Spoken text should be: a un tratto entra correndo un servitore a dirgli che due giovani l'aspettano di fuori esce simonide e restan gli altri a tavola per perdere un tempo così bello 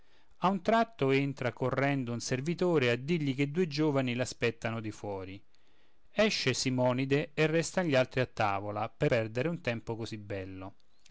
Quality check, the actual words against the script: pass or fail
pass